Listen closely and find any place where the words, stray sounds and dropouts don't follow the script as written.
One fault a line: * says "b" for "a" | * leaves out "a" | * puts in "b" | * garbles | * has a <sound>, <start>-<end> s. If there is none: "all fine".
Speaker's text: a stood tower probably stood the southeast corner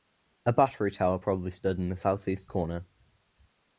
* says "battery" for "stood"
* puts in "in"